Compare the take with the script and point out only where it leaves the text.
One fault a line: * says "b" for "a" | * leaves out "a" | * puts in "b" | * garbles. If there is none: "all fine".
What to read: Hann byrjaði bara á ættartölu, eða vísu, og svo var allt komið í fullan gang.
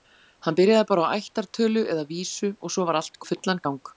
* leaves out "komið"